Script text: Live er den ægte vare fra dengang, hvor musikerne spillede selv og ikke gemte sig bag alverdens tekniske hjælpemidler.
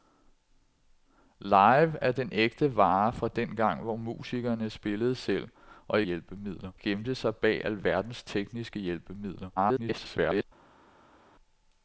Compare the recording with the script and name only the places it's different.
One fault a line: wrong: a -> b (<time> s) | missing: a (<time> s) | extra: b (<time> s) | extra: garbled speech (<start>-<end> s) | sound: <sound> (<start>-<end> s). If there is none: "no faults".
wrong: ikke -> hjælpemidler (6.0 s)
extra: garbled speech (9.6-10.4 s)